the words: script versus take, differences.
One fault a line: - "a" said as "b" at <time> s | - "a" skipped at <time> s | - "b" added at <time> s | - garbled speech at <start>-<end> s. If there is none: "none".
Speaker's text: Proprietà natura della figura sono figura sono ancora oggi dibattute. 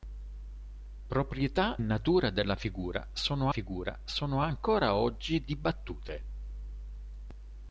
none